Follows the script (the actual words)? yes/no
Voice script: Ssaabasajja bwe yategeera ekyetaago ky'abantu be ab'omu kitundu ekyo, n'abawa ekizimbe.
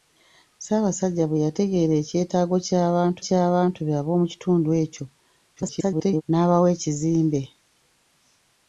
no